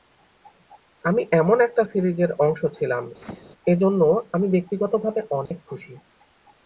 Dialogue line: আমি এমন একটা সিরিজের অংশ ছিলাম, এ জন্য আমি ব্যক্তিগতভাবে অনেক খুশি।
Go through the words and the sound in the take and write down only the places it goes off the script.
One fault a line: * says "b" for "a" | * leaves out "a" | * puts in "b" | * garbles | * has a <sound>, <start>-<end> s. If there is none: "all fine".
* has a sneeze, 3.2-3.5 s
* has a dropout, 5.5-5.5 s